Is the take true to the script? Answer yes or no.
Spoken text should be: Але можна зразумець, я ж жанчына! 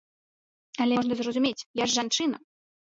yes